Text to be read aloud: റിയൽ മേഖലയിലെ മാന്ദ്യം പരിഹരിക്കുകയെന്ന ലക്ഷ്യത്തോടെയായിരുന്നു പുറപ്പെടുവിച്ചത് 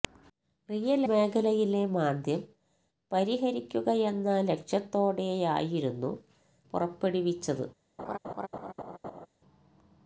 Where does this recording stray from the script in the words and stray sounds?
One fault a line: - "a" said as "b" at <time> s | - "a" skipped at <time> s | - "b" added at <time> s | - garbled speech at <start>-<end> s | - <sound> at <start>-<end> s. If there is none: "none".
- laugh at 8.0-9.3 s